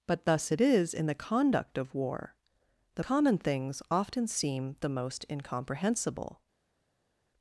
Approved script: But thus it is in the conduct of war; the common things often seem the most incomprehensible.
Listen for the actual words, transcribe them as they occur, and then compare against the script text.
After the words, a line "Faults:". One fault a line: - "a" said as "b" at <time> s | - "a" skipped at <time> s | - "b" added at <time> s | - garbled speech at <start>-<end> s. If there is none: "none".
But thus it is in the conduct of war; the common things often seem the most incomprehensible.
Faults:
none